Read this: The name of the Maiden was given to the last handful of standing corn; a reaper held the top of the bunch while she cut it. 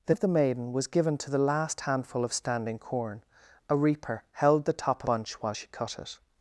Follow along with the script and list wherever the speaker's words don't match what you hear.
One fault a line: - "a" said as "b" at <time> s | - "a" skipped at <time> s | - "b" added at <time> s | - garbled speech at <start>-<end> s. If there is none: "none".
- "name" skipped at 0.1 s
- "of the" skipped at 5.0 s